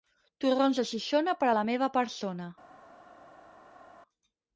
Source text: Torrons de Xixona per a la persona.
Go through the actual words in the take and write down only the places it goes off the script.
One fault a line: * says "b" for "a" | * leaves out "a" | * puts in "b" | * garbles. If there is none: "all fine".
* puts in "meva"